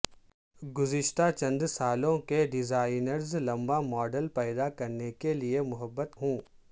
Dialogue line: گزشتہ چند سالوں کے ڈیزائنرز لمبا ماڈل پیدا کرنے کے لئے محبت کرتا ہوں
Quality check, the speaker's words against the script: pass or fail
fail